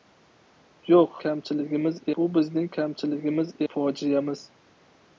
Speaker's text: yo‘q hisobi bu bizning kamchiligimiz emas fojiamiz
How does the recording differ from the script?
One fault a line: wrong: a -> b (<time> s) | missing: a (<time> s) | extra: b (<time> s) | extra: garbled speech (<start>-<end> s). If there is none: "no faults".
wrong: hisobi -> kamchiligimiz (1.2 s)
missing: emas (3.5 s)